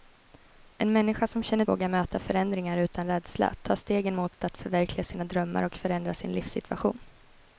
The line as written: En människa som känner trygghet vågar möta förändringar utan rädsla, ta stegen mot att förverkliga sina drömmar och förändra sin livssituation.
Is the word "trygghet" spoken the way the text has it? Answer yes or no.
no